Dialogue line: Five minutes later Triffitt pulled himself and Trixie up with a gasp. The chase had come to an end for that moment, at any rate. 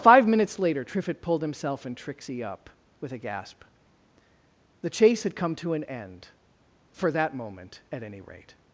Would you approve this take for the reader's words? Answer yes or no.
yes